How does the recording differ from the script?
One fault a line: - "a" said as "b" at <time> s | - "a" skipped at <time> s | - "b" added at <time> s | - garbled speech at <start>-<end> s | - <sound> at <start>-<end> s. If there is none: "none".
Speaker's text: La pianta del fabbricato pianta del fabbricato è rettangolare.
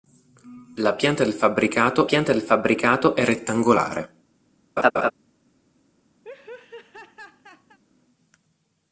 - laugh at 4.8-5.1 s
- laugh at 6.2-7.8 s